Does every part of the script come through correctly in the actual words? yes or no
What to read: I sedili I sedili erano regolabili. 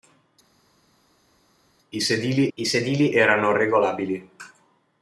yes